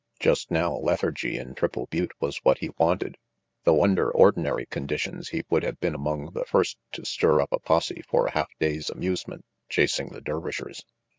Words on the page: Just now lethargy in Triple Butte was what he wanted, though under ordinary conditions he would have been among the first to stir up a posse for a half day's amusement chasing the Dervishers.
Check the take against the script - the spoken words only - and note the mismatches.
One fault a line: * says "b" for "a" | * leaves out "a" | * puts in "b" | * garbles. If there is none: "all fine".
all fine